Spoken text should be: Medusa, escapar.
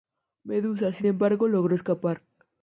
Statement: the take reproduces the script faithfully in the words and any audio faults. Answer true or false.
false